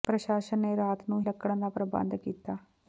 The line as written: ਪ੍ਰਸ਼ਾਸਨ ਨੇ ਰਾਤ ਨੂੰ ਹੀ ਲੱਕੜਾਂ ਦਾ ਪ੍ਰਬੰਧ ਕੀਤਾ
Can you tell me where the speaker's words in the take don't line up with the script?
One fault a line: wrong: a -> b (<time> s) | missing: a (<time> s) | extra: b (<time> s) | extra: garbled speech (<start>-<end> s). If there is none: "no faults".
missing: ਹੀ (1.2 s)